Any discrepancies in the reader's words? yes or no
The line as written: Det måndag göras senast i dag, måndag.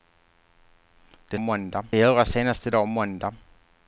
no